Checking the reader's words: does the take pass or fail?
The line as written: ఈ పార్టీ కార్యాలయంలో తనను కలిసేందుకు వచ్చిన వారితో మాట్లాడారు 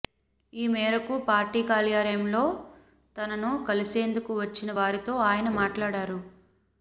fail